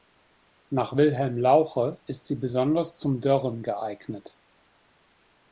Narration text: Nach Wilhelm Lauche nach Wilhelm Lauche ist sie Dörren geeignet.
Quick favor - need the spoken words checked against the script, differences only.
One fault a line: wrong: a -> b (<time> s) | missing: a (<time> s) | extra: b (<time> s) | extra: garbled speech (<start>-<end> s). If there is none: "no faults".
wrong: nach Wilhelm Lauche ist sie -> ist sie besonders zum (2.1 s)